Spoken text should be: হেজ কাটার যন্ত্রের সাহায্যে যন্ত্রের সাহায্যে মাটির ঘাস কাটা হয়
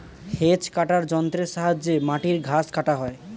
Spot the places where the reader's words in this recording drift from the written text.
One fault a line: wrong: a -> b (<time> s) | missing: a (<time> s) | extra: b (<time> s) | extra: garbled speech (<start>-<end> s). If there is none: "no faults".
missing: যন্ত্রের সাহায্যে (1.9 s)